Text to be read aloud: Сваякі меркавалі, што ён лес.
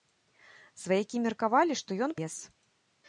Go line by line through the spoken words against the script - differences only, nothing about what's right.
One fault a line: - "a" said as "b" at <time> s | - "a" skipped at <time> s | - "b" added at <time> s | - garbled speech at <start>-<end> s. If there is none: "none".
none